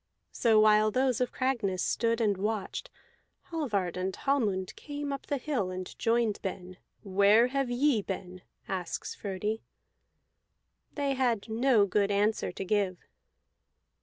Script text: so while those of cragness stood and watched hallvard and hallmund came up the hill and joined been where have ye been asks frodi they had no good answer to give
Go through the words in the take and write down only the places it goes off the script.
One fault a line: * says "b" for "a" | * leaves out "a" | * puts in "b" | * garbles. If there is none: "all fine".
all fine